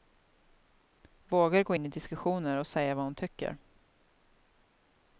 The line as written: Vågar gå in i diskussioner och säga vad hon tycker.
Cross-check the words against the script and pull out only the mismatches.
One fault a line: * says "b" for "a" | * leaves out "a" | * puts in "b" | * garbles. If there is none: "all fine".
all fine